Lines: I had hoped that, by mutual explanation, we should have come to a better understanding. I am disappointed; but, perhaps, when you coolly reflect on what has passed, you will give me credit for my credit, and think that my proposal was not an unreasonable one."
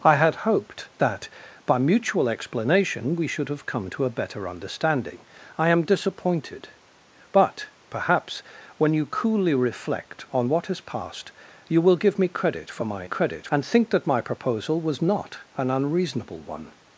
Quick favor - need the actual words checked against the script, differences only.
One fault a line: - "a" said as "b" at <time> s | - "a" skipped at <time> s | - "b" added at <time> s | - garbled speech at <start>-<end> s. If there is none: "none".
none